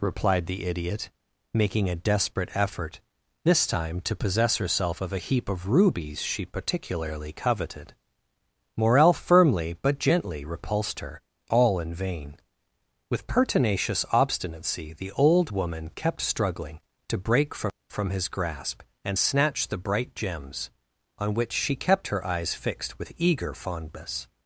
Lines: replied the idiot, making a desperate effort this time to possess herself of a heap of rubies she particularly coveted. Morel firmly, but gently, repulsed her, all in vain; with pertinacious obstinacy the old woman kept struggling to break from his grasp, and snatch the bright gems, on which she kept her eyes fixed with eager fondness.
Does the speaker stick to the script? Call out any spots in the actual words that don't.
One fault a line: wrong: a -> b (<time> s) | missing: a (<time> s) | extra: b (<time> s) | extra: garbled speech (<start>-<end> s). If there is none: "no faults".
extra: from (17.9 s)